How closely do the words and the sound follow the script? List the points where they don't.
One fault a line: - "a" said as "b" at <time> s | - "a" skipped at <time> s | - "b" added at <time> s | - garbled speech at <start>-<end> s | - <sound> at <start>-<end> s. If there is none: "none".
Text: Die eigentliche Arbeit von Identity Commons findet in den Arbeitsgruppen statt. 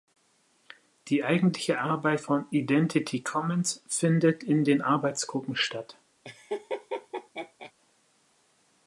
- laugh at 6.2-7.7 s